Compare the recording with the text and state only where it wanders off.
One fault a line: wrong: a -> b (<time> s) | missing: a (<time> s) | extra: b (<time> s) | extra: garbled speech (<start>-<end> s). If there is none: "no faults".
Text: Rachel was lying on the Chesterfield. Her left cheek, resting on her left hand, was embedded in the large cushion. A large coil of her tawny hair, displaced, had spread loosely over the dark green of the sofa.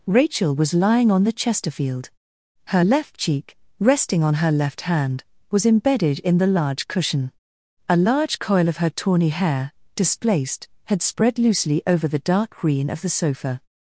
no faults